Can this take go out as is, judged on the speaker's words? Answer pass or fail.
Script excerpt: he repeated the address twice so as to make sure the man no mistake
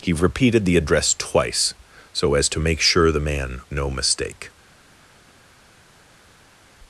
pass